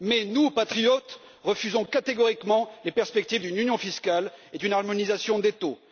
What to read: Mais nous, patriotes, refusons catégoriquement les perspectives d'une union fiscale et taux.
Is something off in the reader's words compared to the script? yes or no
yes